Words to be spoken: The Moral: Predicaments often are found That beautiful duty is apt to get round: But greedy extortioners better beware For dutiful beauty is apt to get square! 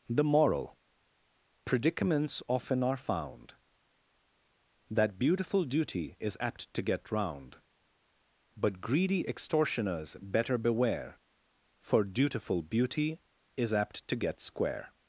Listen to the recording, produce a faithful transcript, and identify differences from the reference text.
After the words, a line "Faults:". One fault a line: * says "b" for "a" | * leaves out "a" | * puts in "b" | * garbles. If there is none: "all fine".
The Moral: Predicaments often are found That beautiful duty is apt to get round: But greedy extortioners better beware For dutiful beauty is apt to get square!
Faults:
all fine